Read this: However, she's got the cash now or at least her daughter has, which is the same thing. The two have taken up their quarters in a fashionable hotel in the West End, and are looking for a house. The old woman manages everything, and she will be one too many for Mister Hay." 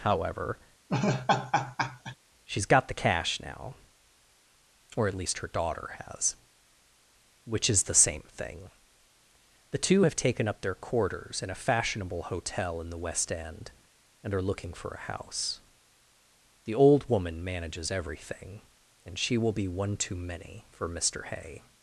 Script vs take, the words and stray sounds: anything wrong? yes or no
yes